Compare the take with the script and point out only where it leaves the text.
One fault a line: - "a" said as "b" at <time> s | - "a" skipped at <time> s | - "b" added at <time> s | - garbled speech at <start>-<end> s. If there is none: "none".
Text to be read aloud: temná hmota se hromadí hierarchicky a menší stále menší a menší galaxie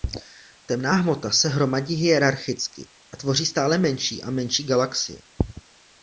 - "menší" said as "tvoří" at 3.2 s